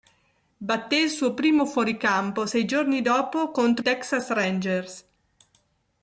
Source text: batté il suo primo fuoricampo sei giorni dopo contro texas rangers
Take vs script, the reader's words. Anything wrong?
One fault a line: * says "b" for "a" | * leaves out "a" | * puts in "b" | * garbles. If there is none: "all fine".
all fine